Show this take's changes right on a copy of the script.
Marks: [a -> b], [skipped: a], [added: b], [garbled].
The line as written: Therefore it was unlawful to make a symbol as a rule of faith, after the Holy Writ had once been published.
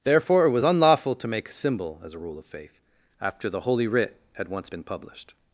Therefore it was unlawful to make a symbol as a rule of faith, after the Holy Writ had once been published.